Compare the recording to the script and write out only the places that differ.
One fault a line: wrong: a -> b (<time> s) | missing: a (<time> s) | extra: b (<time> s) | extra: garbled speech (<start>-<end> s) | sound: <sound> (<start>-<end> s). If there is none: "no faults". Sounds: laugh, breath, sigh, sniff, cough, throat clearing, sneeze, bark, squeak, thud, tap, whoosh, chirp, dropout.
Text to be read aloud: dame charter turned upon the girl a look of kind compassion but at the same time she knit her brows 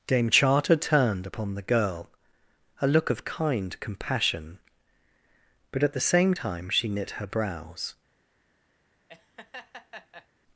sound: laugh (9.1-10.3 s)